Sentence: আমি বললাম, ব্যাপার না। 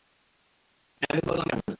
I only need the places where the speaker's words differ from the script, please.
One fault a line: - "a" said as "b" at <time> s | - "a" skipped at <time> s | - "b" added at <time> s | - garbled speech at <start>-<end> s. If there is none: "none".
- "ব্যাপার" skipped at 1.5 s